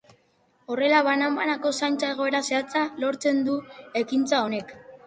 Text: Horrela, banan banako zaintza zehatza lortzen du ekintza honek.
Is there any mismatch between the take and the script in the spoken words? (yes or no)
yes